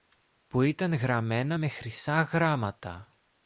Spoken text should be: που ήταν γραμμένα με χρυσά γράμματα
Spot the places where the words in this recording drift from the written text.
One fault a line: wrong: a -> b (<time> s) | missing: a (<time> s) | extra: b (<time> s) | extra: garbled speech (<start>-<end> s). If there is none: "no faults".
no faults